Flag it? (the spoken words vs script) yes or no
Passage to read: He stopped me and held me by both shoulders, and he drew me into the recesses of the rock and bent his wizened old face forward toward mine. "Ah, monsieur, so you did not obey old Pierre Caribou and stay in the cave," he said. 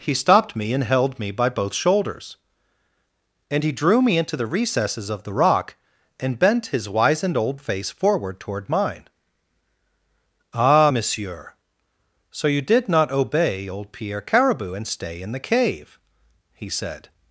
no